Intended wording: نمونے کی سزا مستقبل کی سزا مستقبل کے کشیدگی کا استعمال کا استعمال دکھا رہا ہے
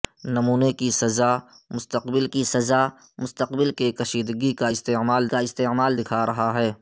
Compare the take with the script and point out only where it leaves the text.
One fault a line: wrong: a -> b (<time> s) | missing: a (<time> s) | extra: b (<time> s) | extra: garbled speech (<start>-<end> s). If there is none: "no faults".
no faults